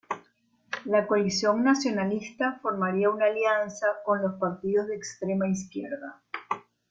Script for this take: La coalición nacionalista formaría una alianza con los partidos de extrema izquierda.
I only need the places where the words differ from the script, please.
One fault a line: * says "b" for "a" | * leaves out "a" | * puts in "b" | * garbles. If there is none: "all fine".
all fine